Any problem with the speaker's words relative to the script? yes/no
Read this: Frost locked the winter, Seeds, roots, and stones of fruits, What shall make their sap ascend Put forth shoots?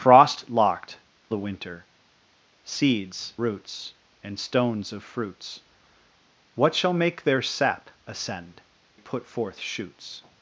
no